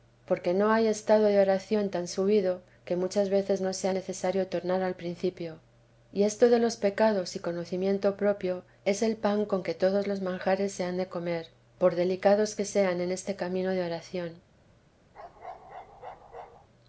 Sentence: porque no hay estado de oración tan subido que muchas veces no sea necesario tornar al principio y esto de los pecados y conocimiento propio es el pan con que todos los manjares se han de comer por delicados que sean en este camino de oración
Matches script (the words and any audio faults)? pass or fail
fail